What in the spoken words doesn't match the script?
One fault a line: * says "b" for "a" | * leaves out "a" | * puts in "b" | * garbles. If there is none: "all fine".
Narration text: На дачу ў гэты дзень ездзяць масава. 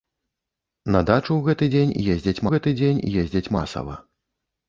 * puts in "гэты дзень ездзяць"